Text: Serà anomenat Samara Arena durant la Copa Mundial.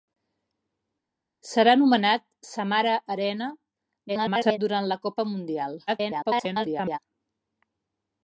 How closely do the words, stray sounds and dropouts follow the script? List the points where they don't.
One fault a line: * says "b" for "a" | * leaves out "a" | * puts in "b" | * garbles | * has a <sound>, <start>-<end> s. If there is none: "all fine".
* garbles
* garbles